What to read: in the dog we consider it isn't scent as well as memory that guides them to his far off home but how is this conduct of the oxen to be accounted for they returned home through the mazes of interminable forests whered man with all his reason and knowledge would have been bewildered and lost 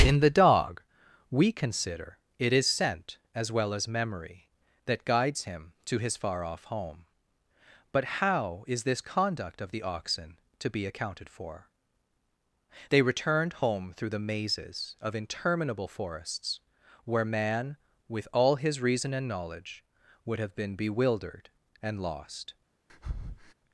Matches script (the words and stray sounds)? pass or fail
fail